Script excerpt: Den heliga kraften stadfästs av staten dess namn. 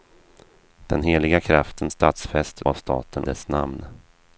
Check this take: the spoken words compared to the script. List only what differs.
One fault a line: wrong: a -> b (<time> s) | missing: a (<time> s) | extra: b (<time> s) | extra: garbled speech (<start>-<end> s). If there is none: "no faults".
no faults